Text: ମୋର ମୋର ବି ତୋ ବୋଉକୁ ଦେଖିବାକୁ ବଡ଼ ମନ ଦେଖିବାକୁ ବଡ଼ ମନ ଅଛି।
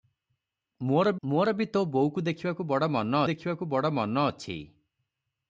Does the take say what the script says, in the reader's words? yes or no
yes